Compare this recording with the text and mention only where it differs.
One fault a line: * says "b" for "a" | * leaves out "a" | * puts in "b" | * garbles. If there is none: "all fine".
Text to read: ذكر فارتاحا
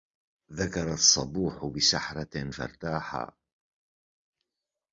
* puts in "الصبوح بسحرة"